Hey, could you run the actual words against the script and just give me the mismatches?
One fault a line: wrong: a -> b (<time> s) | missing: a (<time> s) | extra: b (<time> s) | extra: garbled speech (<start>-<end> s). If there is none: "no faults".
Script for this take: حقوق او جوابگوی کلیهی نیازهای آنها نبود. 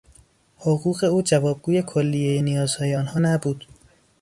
no faults